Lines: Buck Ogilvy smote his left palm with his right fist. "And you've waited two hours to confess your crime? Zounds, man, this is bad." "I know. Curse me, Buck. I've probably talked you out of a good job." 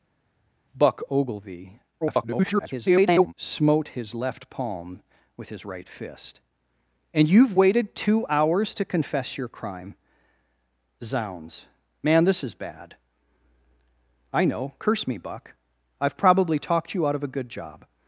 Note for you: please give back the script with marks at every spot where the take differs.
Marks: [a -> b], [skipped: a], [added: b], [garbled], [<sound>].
Buck Ogilvy [garbled] smote his left palm with his right fist. "And you've waited two hours to confess your crime? Zounds, man, this is bad." "I know. Curse me, Buck. I've probably talked you out of a good job."